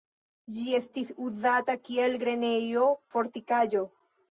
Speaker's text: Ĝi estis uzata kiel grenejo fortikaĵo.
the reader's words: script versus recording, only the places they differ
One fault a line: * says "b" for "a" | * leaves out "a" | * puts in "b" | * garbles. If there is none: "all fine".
all fine